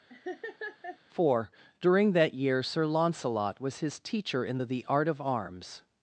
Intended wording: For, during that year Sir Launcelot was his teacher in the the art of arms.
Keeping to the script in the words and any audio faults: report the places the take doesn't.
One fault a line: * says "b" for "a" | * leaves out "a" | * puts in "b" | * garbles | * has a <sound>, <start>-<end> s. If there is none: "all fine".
* has a laugh, 0.1-1.0 s